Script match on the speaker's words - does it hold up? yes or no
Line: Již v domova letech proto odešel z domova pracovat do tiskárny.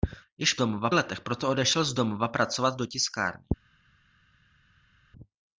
yes